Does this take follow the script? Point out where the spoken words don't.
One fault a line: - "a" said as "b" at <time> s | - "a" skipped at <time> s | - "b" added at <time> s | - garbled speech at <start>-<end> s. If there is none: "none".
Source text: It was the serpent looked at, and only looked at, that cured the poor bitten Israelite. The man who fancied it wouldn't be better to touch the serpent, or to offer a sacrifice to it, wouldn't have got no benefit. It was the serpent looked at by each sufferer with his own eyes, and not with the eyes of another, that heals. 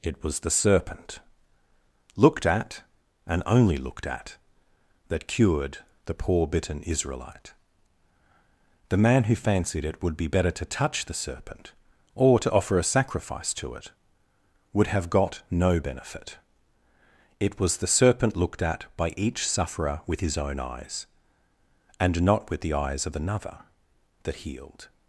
- "wouldn't" said as "would" at 10.0 s
- "wouldn't" said as "would" at 14.7 s
- "heals" said as "healed" at 24.4 s